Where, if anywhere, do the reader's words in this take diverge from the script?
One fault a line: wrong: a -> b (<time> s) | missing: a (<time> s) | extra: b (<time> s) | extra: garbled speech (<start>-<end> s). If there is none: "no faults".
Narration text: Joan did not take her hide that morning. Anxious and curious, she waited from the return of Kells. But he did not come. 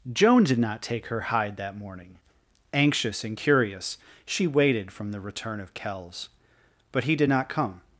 no faults